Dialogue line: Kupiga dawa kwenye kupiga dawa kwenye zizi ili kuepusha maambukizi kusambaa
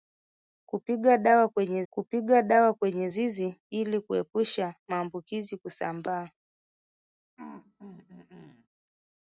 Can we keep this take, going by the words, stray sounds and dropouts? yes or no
no